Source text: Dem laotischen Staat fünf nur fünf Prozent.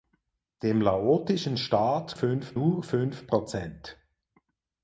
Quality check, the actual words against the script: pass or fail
pass